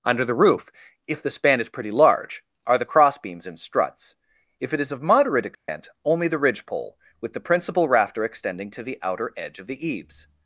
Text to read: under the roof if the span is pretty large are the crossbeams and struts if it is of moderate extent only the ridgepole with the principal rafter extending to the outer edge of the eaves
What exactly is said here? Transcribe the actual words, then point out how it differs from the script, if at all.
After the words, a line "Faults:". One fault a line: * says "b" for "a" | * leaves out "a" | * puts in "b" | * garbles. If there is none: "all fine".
under the roof if the span is pretty large are the crossbeams and struts if it is of moderate extent only the ridgepole with the principal rafter extending to the outer edge of the eaves
Faults:
all fine